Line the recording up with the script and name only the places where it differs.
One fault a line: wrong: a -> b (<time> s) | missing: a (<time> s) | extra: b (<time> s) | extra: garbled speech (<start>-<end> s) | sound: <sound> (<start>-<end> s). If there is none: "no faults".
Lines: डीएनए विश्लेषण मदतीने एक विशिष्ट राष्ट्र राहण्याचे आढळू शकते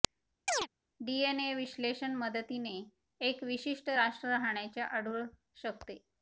sound: chirp (0.5-0.7 s)